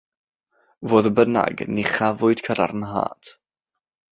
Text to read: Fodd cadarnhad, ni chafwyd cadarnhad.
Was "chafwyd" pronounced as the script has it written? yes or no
yes